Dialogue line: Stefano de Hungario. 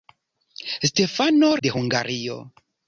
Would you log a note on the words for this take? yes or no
no